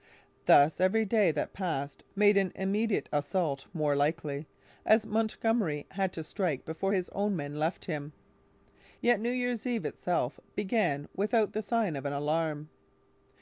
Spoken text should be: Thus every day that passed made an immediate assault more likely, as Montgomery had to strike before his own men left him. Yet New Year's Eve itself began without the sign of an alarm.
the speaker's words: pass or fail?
pass